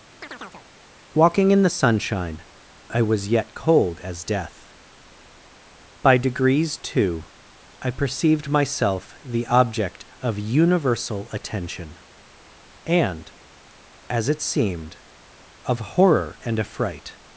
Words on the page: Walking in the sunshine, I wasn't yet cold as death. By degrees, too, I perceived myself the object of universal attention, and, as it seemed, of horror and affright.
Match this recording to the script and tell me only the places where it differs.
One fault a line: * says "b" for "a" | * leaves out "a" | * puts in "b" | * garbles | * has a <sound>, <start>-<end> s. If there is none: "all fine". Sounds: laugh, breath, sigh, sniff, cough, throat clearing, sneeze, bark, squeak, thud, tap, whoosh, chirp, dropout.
* has a chirp, 0.2-0.7 s
* says "was" for "wasn't"